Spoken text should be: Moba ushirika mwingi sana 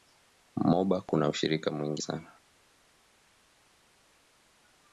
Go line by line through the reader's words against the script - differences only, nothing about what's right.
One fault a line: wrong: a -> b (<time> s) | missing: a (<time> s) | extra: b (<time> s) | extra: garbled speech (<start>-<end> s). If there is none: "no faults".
extra: kuna (1.0 s)